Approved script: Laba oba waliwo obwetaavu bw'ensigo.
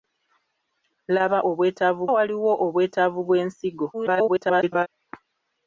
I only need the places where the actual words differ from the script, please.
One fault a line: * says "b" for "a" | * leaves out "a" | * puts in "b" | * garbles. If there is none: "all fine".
* says "obwetaavu" for "oba"
* garbles